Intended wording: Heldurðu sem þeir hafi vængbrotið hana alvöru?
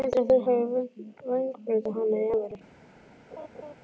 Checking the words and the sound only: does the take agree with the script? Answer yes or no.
no